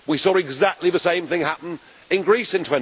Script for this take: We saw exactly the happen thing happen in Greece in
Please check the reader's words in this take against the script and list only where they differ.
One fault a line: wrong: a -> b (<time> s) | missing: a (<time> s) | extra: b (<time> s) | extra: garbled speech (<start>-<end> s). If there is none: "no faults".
wrong: happen -> same (1.0 s)